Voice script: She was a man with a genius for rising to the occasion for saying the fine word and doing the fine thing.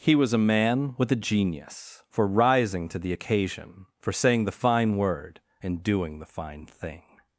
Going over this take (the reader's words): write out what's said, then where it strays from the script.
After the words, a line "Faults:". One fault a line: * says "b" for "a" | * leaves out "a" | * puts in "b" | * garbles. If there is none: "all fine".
He was a man with a genius for rising to the occasion for saying the fine word and doing the fine thing.
Faults:
* says "He" for "She"